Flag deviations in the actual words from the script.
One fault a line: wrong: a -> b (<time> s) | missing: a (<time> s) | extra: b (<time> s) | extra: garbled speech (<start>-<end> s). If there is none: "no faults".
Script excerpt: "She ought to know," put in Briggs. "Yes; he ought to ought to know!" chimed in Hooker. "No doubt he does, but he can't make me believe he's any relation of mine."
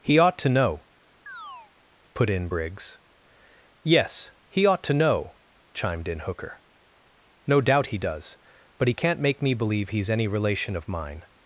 wrong: She -> He (0.0 s)
missing: ought to (4.9 s)